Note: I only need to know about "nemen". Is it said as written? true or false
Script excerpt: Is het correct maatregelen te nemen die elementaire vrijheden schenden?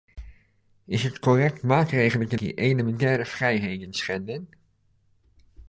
false